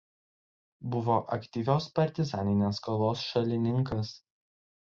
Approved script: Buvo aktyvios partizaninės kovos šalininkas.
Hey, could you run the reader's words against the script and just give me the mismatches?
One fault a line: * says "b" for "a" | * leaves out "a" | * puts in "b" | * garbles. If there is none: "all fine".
all fine